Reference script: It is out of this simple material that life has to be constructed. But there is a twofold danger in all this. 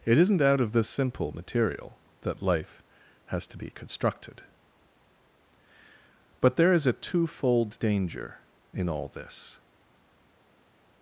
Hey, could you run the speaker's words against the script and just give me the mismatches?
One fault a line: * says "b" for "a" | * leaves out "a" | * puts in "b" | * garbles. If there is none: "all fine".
* says "isn't" for "is"